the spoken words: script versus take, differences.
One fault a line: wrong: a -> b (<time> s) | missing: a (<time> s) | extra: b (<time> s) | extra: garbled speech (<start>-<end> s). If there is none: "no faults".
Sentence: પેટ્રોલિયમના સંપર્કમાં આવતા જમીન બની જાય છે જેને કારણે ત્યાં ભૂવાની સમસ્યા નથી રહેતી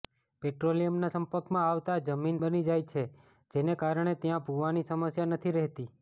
no faults